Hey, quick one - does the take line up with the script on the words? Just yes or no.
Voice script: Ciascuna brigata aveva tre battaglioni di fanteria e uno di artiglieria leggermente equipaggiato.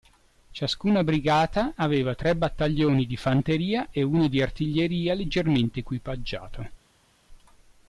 yes